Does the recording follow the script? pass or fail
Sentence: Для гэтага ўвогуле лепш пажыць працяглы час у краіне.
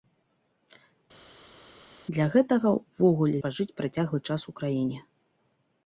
fail